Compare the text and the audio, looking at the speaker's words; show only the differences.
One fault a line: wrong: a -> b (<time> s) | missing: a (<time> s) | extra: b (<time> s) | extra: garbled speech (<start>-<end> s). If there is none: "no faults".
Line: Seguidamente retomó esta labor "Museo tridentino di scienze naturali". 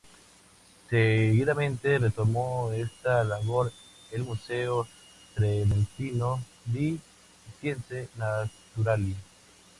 extra: el (4.1 s)